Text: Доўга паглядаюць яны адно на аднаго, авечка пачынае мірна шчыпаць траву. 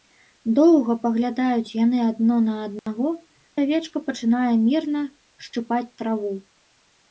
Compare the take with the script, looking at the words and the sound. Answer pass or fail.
fail